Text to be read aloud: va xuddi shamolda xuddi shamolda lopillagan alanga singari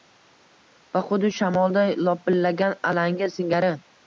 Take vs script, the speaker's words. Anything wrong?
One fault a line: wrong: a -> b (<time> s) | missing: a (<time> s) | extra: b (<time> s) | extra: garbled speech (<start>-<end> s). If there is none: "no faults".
missing: xuddi shamolda (1.8 s)